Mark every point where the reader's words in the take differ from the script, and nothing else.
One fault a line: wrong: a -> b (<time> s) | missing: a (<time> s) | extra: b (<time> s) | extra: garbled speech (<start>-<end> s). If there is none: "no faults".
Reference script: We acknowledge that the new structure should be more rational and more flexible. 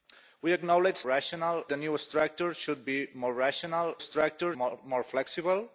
wrong: that -> rational (1.0 s)
wrong: and -> structure (4.0 s)